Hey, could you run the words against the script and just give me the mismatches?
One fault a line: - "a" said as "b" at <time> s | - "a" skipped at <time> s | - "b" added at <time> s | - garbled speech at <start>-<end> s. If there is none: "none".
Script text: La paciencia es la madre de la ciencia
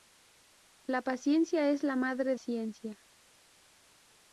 - "de la" skipped at 2.4 s